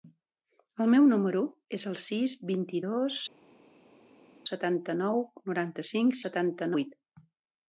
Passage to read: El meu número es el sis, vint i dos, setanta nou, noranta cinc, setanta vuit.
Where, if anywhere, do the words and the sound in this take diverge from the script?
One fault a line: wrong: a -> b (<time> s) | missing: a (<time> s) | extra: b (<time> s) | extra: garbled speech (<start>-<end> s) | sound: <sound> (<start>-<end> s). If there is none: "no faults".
no faults